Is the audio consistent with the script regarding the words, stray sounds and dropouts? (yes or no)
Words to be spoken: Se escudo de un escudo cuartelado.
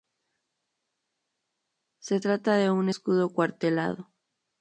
no